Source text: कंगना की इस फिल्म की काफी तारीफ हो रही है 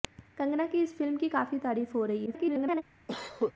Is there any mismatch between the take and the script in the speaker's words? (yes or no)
yes